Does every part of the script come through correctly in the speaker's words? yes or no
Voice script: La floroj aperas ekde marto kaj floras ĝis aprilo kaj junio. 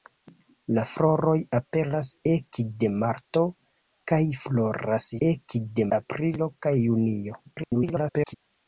no